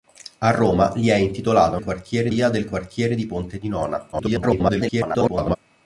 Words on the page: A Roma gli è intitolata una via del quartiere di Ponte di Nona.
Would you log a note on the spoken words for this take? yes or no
yes